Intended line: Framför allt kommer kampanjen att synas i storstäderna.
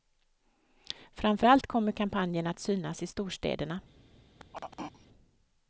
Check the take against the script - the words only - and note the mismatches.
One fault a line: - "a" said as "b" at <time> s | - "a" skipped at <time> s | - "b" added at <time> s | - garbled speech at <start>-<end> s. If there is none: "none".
none